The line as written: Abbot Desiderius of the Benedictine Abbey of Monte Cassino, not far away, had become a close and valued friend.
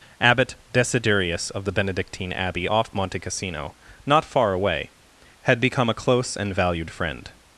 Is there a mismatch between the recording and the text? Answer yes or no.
yes